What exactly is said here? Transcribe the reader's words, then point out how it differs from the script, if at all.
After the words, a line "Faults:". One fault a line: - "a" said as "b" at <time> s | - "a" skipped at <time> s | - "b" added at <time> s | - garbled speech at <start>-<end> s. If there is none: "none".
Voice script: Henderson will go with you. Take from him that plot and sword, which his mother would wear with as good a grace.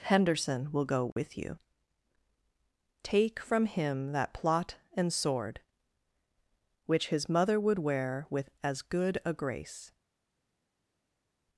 Henderson will go with you. Take from him that plot and sword, which his mother would wear with as good a grace.
Faults:
none